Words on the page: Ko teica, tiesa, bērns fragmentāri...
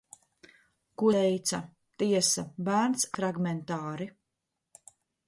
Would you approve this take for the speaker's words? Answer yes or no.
yes